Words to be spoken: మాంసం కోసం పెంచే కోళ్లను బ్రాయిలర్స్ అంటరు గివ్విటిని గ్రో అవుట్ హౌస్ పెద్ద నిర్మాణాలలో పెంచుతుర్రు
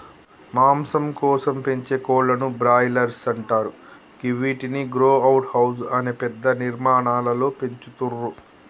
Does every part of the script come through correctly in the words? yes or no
no